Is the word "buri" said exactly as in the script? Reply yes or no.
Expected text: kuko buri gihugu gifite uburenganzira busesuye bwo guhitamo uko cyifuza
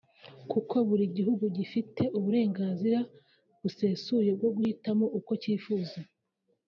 yes